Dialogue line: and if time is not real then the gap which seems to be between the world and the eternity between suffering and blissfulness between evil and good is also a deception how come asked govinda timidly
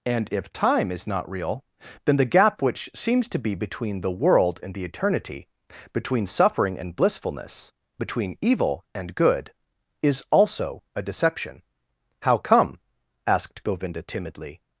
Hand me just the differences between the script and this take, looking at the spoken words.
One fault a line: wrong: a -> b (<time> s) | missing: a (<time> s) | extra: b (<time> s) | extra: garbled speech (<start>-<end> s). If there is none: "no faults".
no faults